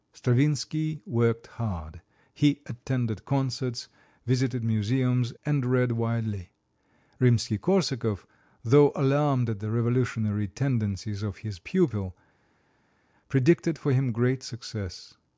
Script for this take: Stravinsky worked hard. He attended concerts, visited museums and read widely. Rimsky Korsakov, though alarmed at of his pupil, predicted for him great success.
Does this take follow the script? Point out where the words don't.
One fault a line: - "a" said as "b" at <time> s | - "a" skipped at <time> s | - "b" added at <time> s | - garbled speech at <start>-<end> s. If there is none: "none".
- "the revolutionary tendencies" added at 9.6 s